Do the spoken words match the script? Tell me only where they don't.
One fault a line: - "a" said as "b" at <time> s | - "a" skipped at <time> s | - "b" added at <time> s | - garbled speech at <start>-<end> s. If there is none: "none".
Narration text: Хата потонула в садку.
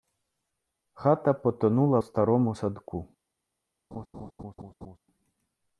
- "старому" added at 2.0 s